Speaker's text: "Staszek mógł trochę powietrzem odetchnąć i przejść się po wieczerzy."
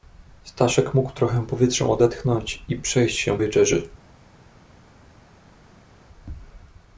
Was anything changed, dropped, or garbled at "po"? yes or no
yes